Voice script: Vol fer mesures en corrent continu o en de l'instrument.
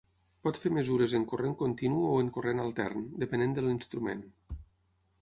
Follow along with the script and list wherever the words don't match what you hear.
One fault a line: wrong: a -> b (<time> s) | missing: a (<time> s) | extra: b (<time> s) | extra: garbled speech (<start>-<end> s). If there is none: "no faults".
wrong: Vol -> Pot (0.5 s)
extra: corrent altern depenent (2.4 s)